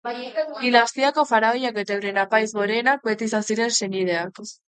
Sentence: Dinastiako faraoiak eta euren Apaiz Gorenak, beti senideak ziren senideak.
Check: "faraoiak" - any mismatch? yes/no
no